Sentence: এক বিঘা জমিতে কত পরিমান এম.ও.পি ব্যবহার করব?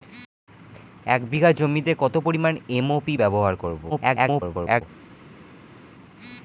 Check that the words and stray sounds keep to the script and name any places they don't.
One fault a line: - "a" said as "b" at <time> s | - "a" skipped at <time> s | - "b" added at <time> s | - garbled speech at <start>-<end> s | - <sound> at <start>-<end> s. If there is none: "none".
- garbled speech at 3.9-4.8 s